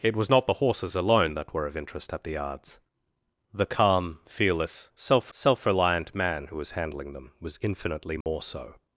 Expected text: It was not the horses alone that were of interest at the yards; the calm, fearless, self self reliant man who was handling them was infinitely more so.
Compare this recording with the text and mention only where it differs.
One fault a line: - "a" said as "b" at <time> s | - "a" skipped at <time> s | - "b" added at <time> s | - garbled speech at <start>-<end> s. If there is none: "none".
none